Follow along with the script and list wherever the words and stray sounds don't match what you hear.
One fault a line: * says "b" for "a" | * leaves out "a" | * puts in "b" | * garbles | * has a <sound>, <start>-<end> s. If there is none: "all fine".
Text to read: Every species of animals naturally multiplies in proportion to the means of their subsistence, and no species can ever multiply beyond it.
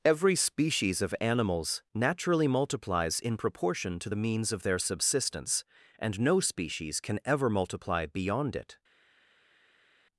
all fine